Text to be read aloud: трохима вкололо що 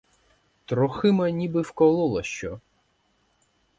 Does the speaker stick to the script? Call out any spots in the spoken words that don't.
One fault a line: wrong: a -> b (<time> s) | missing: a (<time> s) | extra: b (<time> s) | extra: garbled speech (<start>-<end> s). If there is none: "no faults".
extra: ніби (1.3 s)